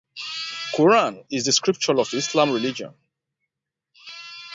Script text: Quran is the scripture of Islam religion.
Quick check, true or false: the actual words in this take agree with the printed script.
true